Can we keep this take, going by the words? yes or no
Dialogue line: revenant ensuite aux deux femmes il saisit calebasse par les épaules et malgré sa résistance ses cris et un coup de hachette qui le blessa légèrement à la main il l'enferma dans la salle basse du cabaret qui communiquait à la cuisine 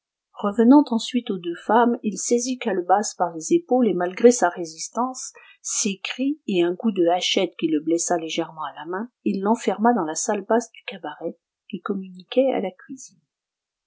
yes